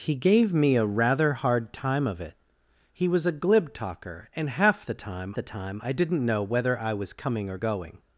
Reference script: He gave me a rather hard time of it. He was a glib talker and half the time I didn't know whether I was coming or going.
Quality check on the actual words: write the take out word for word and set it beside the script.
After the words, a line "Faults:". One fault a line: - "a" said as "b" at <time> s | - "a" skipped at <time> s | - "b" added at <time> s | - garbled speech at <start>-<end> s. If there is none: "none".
He gave me a rather hard time of it. He was a glib talker and half the time the time I didn't know whether I was coming or going.
Faults:
- "the time" added at 5.3 s